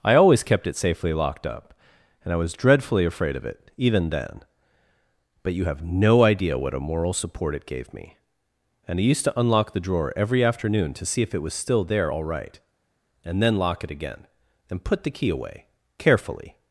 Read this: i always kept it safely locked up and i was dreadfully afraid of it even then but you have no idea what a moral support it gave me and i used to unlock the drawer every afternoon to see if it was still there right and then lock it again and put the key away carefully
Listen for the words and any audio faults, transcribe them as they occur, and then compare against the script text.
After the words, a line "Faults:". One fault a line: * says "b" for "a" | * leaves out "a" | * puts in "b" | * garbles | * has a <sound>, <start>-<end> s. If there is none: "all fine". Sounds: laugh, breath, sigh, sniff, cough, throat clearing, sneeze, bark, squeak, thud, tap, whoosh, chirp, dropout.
i always kept it safely locked up and i was dreadfully afraid of it even then but you have no idea what a moral support it gave me and i used to unlock the drawer every afternoon to see if it was still there all right and then lock it again and put the key away carefully
Faults:
* puts in "all"